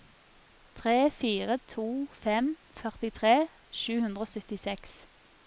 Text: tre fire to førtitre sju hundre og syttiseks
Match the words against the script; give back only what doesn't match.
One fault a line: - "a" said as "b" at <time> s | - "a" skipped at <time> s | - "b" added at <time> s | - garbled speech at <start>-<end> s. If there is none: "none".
- "fem" added at 2.2 s